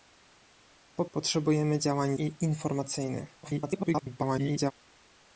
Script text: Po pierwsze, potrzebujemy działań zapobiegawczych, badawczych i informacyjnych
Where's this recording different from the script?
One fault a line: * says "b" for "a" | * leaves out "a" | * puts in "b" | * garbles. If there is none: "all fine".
* leaves out "pierwsze"
* leaves out "zapobiegawczych badawczych"
* garbles